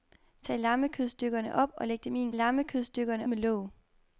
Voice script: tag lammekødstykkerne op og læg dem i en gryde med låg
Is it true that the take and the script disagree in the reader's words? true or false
true